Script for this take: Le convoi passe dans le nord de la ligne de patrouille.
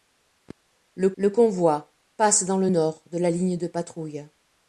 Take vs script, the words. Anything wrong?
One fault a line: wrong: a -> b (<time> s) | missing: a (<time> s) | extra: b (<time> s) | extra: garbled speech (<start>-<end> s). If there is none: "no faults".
extra: le (1.2 s)